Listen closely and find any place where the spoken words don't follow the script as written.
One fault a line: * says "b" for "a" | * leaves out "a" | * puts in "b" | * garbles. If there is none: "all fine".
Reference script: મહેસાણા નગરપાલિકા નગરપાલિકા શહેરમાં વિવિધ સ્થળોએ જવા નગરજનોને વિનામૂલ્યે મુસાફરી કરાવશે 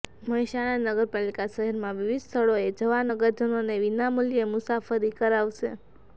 * leaves out "નગરપાલિકા"